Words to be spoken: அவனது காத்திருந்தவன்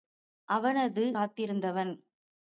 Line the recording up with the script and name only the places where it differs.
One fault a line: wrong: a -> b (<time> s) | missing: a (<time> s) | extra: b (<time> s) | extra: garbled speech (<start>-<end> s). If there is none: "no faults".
no faults